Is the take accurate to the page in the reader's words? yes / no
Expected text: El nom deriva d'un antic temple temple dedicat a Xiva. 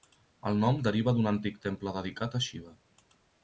no